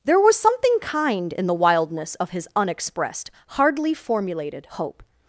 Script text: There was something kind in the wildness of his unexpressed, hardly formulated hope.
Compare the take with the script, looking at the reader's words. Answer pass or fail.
pass